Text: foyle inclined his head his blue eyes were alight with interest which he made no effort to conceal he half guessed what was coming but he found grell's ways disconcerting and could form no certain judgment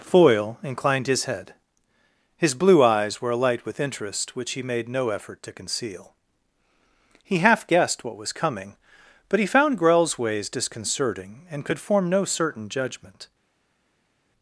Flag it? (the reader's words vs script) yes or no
no